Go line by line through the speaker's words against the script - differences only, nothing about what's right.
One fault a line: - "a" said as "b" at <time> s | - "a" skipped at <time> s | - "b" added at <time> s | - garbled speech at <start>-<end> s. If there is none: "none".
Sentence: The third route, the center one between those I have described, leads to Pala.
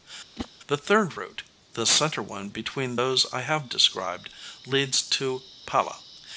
none